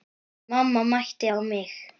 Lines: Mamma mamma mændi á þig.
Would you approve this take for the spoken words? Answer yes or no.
no